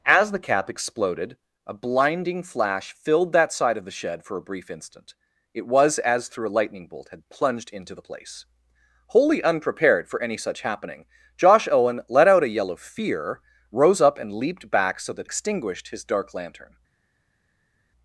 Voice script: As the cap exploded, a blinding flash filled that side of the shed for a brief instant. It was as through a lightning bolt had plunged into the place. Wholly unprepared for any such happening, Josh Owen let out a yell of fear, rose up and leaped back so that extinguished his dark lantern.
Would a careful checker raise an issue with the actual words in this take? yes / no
no